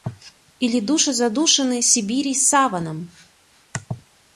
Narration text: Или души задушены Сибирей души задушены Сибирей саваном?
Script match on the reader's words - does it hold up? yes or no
no